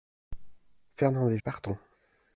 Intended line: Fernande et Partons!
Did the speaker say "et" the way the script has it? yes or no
yes